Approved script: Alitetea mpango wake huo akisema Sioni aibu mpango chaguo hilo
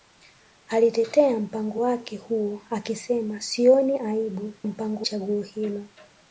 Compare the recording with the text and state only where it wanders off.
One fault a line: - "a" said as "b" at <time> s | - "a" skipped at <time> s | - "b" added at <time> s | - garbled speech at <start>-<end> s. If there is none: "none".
none